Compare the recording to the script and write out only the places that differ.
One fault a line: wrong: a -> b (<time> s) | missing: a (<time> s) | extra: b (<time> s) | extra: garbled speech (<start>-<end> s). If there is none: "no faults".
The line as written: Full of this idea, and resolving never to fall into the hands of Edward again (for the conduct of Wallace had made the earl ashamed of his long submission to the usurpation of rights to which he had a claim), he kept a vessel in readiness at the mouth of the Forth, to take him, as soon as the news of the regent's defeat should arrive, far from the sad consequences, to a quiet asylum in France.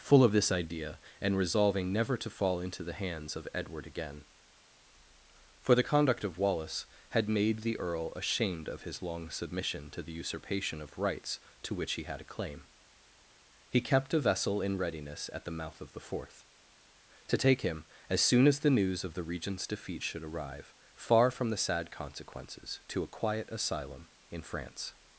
no faults